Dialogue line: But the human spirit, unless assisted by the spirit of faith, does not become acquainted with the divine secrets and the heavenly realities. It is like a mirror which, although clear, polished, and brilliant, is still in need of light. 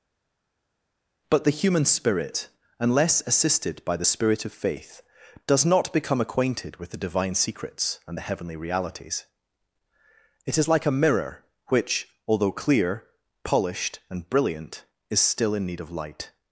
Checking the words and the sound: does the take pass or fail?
pass